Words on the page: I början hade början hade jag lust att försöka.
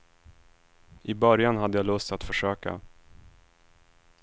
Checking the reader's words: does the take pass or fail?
fail